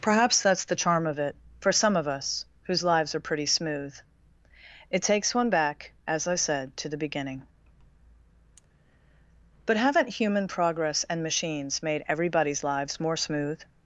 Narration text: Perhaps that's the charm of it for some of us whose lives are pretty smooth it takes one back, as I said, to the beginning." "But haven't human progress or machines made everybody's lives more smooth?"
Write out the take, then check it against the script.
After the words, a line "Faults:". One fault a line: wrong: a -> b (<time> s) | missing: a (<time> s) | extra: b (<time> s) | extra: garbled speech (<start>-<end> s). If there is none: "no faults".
Perhaps that's the charm of it for some of us whose lives are pretty smooth it takes one back, as I said, to the beginning." "But haven't human progress and machines made everybody's lives more smooth?"
Faults:
wrong: or -> and (11.1 s)